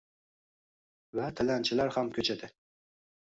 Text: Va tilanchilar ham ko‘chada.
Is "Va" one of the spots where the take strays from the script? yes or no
no